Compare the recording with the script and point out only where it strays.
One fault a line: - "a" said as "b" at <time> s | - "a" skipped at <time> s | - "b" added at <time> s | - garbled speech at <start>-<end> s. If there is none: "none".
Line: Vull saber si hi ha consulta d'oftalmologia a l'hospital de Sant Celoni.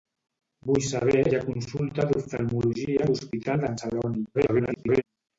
- "si" skipped at 1.2 s
- "de" skipped at 3.7 s
- garbled speech at 4.3-5.0 s